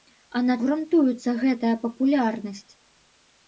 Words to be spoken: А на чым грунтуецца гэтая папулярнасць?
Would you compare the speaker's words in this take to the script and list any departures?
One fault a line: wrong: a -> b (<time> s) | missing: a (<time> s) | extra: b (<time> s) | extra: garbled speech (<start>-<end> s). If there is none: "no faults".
missing: чым (0.6 s)